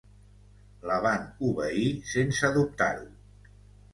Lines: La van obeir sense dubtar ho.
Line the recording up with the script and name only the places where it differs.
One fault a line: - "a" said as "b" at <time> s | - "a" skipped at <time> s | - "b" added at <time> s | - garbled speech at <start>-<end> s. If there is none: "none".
none